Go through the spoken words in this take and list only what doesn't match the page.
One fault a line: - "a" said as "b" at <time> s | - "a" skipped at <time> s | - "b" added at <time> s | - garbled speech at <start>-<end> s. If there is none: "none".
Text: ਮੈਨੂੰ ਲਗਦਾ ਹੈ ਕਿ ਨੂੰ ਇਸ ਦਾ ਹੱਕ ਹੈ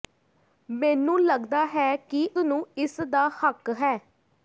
none